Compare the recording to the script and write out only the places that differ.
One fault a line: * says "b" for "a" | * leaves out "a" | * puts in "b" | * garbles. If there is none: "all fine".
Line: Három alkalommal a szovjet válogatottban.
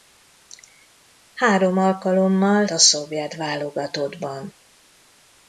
all fine